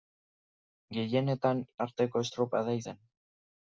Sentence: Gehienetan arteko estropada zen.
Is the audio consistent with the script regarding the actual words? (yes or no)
yes